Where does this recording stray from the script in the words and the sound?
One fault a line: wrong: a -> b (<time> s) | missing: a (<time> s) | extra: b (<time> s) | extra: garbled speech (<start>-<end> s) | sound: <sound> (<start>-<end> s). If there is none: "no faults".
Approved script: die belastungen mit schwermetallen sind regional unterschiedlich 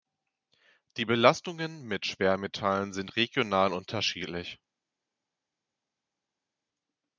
no faults